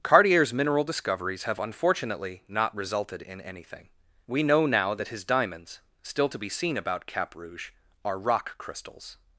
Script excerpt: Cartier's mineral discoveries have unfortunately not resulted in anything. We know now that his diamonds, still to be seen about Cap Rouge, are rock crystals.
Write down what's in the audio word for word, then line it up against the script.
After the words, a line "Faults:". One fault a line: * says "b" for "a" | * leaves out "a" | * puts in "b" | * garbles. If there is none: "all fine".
Cartier's mineral discoveries have unfortunately not resulted in anything. We know now that his diamonds, still to be seen about Cap Rouge, are rock crystals.
Faults:
all fine